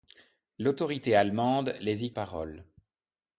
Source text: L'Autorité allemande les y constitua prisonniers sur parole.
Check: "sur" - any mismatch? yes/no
yes